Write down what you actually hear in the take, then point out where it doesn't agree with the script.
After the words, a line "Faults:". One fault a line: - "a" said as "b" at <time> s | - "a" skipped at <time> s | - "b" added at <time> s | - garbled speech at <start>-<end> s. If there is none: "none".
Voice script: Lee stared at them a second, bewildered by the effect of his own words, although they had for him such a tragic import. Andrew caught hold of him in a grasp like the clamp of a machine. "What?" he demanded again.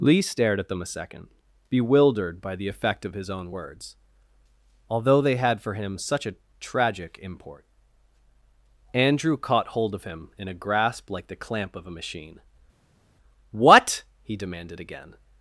Lee stared at them a second, bewildered by the effect of his own words, although they had for him such a tragic import. Andrew caught hold of him in a grasp like the clamp of a machine. "What?" he demanded again.
Faults:
none